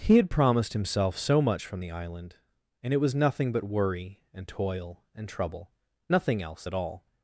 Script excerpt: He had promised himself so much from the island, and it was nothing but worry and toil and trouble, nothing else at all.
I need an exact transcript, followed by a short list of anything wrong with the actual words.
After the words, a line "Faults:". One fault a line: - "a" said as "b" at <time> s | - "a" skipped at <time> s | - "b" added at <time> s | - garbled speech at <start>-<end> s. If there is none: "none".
He had promised himself so much from the island, and it was nothing but worry and toil and trouble, nothing else at all.
Faults:
none